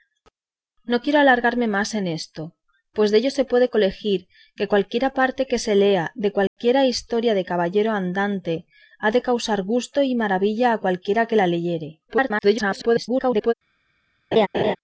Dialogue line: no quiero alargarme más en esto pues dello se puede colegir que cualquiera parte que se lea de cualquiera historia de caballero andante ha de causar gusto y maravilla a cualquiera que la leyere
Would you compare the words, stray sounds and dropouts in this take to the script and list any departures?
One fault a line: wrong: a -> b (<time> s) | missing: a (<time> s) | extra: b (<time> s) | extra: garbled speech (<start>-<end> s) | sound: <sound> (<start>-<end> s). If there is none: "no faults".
sound: dropout (6.5-6.6 s)
extra: garbled speech (12.1-13.5 s)
sound: laugh (14.3-14.8 s)